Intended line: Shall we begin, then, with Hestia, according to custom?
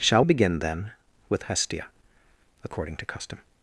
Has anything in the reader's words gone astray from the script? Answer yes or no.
yes